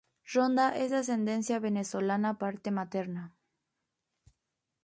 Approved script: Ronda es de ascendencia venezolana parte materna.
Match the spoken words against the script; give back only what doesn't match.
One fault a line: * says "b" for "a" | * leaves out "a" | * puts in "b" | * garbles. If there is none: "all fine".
all fine